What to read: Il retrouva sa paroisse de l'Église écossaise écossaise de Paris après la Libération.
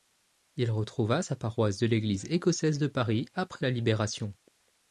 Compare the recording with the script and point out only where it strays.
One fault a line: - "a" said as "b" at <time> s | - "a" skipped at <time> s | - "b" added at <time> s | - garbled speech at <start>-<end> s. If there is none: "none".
- "écossaise" skipped at 2.8 s